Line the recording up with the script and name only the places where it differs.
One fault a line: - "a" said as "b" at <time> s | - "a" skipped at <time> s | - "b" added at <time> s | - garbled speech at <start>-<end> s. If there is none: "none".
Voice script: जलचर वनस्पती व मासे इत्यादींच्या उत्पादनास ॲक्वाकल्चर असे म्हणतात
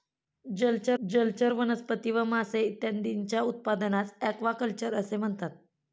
- "जलचर" added at 1.0 s